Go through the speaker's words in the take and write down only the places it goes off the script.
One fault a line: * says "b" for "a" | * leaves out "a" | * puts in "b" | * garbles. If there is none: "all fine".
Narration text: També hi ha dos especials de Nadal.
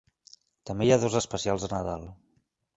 all fine